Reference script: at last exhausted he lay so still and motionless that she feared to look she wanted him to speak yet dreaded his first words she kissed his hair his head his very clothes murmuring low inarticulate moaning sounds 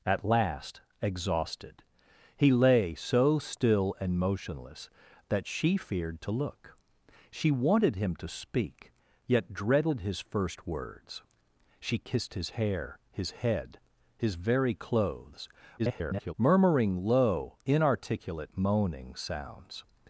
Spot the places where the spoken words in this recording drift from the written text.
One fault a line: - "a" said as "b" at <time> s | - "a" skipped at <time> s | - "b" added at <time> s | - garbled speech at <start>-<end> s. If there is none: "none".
- garbled speech at 15.8-16.3 s